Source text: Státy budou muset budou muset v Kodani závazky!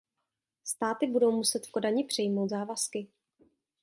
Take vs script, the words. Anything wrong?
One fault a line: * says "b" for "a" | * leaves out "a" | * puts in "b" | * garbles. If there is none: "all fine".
* leaves out "budou muset"
* puts in "přijmout"